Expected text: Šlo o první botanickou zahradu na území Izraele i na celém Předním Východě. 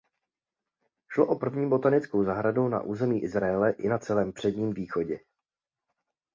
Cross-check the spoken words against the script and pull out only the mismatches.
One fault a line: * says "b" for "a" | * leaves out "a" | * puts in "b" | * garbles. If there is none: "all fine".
all fine